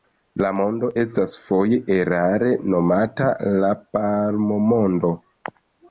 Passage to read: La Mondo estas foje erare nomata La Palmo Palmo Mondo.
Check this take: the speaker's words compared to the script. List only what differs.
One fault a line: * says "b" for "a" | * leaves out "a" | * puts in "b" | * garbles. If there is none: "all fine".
* leaves out "Palmo"